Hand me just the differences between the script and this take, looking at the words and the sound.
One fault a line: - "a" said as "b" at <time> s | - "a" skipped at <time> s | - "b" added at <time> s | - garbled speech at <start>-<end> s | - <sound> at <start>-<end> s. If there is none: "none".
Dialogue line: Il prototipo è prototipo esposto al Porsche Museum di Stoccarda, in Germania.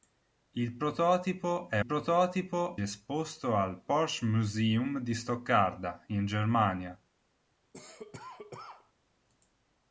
- cough at 7.7-8.9 s